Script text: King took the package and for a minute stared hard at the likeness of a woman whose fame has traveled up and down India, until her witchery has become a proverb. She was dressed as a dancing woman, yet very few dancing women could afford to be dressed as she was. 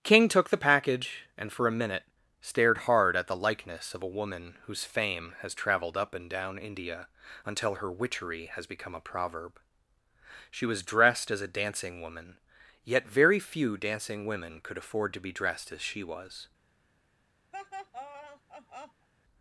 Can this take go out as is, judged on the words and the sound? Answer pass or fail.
fail